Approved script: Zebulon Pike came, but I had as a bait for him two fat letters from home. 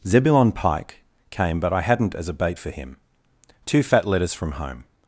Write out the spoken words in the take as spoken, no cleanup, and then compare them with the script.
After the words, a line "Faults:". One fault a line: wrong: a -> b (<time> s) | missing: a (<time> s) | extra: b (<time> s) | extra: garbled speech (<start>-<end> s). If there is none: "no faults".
Zebulon Pike came, but I hadn't as a bait for him two fat letters from home.
Faults:
wrong: had -> hadn't (1.8 s)